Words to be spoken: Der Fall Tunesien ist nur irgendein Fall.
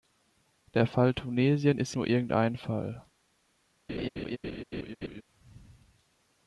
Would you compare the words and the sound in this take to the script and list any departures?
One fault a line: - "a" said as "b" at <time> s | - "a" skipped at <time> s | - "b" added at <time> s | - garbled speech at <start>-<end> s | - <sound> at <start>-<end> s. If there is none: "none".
- laugh at 3.9-5.2 s